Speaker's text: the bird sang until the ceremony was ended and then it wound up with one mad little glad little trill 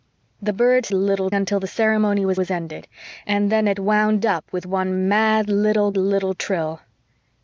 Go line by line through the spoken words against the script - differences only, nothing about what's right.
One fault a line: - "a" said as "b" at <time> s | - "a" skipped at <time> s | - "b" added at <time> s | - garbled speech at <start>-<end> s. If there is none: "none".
- "sang" said as "little" at 0.9 s
- "was" added at 2.3 s
- "glad" skipped at 5.9 s